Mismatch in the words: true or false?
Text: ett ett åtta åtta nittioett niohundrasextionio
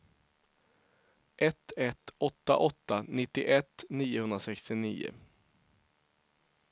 false